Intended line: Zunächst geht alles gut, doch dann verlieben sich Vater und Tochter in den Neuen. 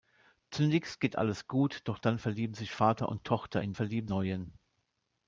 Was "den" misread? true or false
true